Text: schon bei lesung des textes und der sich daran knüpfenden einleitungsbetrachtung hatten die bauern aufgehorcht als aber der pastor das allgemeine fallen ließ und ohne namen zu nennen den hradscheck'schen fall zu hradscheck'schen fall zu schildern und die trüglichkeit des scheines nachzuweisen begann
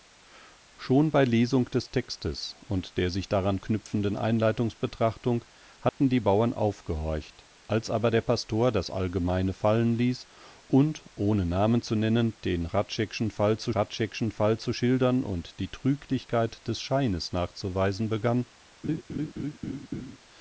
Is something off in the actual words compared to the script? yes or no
no